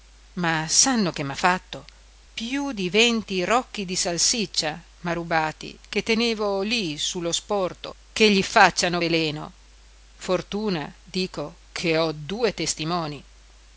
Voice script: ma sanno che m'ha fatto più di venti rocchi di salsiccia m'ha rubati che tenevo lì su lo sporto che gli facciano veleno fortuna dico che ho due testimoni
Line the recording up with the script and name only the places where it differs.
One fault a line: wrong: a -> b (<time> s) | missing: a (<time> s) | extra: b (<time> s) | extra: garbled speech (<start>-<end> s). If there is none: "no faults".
no faults